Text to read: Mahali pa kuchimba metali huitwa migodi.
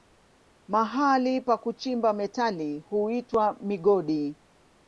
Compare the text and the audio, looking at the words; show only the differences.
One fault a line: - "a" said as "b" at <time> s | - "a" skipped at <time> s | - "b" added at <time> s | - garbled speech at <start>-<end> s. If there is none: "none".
none